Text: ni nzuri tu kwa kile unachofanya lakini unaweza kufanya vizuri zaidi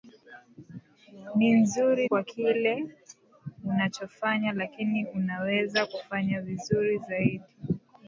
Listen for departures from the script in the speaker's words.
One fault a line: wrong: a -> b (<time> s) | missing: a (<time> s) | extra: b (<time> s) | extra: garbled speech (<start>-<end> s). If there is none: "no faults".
missing: tu (2.1 s)